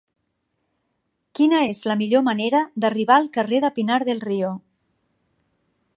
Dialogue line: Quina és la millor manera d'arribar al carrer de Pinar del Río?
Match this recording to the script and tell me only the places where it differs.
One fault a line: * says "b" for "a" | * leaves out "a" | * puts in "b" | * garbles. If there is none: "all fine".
all fine